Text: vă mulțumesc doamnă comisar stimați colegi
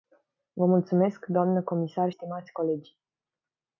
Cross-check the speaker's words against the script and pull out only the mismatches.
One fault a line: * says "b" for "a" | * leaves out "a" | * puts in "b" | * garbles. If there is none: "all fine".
all fine